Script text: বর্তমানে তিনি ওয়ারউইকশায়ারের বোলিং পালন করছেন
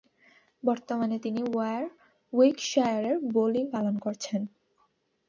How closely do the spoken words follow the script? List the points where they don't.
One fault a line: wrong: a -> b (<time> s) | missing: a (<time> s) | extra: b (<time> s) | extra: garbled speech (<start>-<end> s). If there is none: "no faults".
no faults